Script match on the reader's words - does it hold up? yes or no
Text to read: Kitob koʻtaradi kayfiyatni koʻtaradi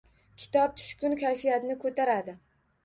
no